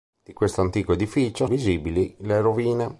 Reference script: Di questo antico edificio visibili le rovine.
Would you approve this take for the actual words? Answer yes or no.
yes